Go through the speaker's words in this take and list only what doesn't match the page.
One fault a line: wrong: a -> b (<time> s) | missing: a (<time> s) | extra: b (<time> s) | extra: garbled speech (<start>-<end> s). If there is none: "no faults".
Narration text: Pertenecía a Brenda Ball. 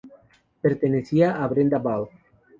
no faults